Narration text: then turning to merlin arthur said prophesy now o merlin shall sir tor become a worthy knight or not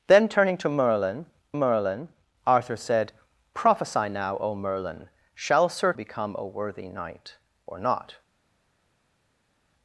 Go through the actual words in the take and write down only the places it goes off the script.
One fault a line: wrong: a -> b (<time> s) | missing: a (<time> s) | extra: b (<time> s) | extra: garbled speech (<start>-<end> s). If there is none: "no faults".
extra: merlin (1.5 s)
missing: tor (5.9 s)